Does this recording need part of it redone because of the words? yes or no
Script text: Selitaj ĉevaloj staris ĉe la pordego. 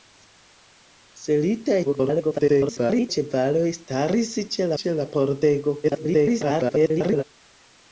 yes